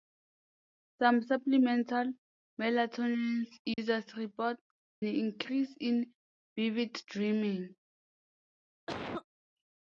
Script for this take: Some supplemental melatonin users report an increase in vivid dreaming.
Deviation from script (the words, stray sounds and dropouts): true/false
true